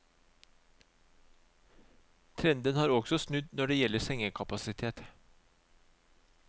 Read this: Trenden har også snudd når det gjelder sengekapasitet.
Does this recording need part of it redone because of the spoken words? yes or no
no